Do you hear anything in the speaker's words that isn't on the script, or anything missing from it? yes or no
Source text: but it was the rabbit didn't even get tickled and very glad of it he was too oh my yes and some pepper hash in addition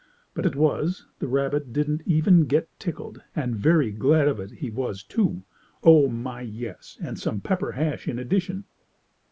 no